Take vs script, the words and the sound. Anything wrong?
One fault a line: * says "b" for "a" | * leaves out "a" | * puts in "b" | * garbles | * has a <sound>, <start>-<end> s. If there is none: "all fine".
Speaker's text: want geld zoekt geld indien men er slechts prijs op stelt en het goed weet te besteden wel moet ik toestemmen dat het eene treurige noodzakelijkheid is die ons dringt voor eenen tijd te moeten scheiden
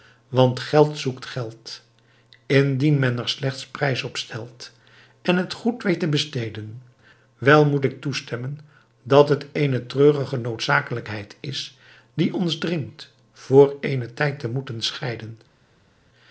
all fine